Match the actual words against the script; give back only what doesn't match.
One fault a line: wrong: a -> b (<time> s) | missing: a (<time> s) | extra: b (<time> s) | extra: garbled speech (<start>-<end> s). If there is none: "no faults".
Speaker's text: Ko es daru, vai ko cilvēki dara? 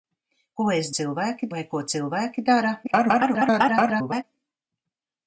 wrong: daru -> cilvēki (1.0 s)
extra: garbled speech (2.8-4.2 s)